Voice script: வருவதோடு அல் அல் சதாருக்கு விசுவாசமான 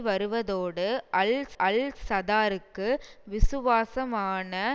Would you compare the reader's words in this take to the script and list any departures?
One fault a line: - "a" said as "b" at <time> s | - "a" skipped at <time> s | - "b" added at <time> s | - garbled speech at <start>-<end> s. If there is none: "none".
none